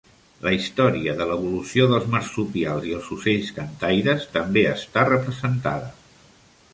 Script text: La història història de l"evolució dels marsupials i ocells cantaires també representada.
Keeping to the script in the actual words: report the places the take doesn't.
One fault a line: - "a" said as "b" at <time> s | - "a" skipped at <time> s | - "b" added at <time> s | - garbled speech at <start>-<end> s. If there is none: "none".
- "història" skipped at 1.1 s
- "els" added at 3.0 s
- "està" added at 4.7 s